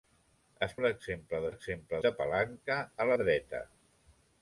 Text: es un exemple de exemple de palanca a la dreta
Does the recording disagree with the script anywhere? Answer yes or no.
no